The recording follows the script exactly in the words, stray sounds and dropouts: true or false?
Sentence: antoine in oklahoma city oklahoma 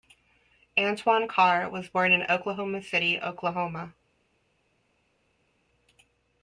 false